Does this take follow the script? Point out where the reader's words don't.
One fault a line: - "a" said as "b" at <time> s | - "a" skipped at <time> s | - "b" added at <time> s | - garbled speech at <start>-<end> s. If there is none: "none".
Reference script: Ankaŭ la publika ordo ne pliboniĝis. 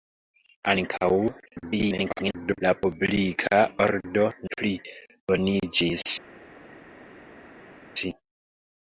- garbled speech at 1.5-2.6 s
- "ne" skipped at 4.3 s